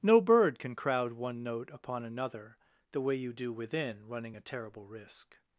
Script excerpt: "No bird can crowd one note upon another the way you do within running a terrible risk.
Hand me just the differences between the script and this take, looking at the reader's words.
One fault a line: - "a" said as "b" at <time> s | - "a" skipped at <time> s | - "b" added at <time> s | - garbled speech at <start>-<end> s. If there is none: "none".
none